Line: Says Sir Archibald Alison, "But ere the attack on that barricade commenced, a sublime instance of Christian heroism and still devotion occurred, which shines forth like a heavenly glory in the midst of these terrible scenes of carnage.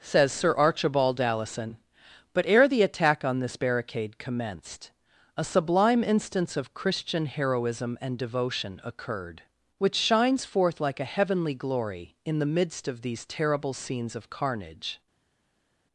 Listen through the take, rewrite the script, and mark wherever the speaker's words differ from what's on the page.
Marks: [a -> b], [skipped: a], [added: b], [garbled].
Says Sir Archibald Alison, "But ere the attack on [that -> this] barricade commenced, a sublime instance of Christian heroism and [skipped: still] devotion occurred, which shines forth like a heavenly glory in the midst of these terrible scenes of carnage.